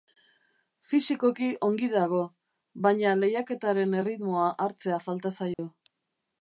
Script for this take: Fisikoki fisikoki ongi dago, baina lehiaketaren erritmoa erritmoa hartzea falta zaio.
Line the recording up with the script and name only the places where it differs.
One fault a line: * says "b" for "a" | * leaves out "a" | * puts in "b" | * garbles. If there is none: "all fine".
* leaves out "fisikoki"
* leaves out "erritmoa"